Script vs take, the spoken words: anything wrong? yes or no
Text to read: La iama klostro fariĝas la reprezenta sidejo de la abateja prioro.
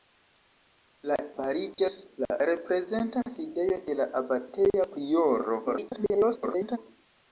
yes